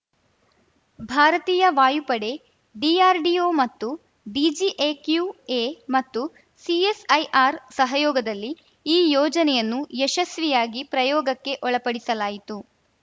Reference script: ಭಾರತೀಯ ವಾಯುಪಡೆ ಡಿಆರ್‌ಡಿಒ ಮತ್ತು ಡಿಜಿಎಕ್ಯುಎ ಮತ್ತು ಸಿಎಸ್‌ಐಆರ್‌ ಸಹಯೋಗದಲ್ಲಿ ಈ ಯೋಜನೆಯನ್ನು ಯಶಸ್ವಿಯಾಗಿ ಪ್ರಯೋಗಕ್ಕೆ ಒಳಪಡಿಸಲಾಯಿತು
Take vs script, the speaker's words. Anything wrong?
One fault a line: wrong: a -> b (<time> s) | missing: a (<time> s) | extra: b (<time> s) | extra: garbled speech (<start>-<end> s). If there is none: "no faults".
no faults